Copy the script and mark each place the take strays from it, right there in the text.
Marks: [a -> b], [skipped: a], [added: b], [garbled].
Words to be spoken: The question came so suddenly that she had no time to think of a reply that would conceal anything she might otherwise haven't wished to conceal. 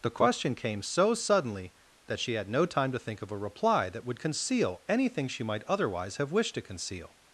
The question came so suddenly that she had no time to think of a reply that would conceal anything she might otherwise [haven't -> have] wished to conceal.